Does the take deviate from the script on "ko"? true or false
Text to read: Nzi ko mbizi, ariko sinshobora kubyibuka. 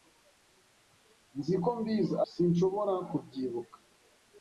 false